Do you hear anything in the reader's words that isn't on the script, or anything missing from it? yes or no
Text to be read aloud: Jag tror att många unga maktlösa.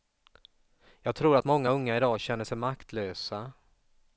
yes